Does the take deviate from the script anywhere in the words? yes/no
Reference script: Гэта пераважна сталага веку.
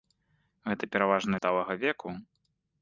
no